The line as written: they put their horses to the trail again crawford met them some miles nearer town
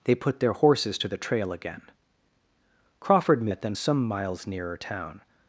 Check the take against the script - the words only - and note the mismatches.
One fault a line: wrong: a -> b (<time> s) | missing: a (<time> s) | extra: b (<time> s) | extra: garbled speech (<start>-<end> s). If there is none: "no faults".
no faults